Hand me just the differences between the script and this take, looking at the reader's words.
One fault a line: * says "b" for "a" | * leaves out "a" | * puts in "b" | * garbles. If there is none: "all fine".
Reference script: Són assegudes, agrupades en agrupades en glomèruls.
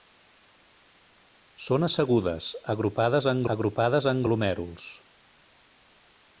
all fine